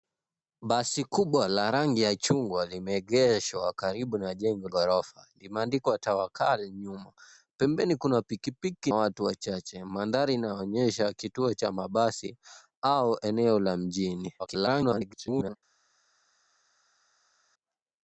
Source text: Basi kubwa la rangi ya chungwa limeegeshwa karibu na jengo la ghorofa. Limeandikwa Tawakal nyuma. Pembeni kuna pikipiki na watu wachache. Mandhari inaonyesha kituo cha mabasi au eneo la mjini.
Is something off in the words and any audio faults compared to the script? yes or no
yes